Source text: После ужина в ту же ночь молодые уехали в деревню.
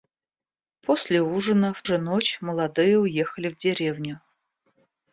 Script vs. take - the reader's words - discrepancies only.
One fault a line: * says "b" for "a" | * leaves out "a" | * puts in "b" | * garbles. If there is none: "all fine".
* leaves out "ту"